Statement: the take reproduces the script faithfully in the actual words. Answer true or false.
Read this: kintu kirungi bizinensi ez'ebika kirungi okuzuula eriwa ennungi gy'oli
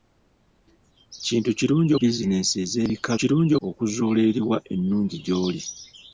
true